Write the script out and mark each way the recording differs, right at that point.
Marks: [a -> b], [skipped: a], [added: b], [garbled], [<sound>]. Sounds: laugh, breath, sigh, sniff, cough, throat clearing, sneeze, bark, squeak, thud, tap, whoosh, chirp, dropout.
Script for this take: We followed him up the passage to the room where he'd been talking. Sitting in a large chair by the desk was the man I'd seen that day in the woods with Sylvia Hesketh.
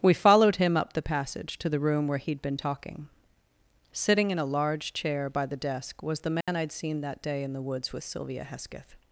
We followed him up the passage to the room where he'd been talking. Sitting in a large chair by the desk was the man [dropout] I'd seen that day in the woods with Sylvia Hesketh.